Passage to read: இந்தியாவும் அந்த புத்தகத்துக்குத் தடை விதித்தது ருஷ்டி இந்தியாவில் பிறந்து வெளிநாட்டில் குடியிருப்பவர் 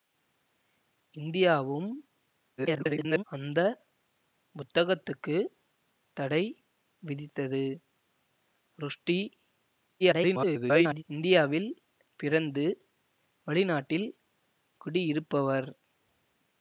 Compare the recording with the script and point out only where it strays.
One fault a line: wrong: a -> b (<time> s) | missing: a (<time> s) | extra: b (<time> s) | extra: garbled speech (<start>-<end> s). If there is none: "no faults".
extra: garbled speech (2.6-3.2 s)
extra: garbled speech (10.0-11.0 s)